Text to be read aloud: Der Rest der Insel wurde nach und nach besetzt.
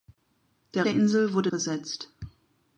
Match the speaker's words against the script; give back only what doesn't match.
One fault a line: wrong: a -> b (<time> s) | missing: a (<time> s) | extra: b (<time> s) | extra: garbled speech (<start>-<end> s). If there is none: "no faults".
missing: Rest (0.9 s)
missing: nach und nach (1.5 s)